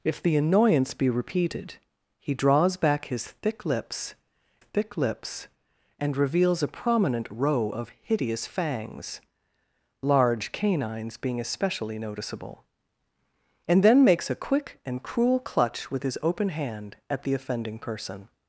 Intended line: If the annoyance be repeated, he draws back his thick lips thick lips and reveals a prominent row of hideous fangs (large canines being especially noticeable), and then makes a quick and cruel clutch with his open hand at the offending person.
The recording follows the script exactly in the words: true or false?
true